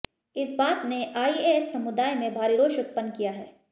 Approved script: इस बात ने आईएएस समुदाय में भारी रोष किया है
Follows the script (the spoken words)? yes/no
no